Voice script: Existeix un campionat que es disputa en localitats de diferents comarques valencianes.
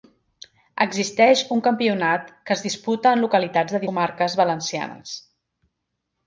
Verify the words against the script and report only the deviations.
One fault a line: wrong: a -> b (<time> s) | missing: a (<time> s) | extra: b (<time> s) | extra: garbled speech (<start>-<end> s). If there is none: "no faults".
missing: diferents (3.8 s)